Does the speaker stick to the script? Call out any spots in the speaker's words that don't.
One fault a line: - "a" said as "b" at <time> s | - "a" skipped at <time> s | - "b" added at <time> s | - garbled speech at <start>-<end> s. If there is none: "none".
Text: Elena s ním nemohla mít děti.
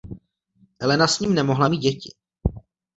none